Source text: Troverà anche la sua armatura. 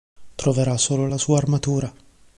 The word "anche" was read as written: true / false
false